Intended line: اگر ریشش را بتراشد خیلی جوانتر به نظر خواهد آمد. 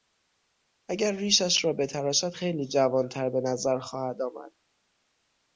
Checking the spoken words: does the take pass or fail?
pass